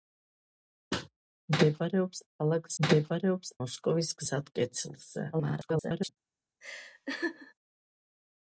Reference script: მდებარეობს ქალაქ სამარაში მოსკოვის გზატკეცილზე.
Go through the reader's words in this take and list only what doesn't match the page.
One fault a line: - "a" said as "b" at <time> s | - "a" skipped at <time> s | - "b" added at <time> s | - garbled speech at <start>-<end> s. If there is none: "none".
- "სამარაში" said as "მდებარეობს" at 2.9 s
- garbled speech at 5.3-6.1 s